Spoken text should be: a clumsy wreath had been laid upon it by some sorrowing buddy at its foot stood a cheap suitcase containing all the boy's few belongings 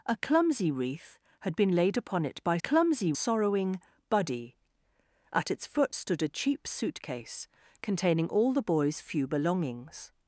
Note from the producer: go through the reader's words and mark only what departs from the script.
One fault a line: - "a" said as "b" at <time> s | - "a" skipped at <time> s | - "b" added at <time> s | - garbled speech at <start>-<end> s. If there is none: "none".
- "some" said as "clumsy" at 2.6 s